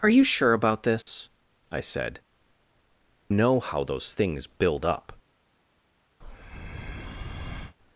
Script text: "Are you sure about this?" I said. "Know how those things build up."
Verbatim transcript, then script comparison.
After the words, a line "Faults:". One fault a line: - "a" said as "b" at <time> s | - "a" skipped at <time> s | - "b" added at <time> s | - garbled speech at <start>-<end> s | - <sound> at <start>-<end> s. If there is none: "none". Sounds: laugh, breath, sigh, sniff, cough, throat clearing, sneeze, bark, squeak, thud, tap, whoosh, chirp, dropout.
"Are you sure about this?" I said. "Know how those things build up."
Faults:
- dropout at 1.0-1.1 s
- breath at 6.2-7.8 s